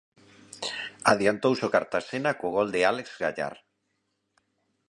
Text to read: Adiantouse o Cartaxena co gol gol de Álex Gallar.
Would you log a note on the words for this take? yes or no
yes